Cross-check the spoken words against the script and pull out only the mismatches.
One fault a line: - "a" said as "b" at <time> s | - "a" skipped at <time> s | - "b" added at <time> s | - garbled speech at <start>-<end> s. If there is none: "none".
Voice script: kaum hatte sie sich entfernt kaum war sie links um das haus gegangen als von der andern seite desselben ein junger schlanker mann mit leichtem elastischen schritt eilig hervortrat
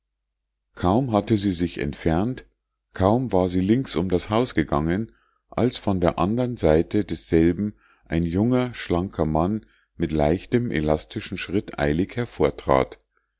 none